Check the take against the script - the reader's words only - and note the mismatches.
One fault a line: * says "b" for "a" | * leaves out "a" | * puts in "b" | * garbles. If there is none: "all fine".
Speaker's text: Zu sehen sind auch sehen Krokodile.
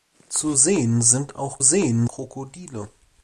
all fine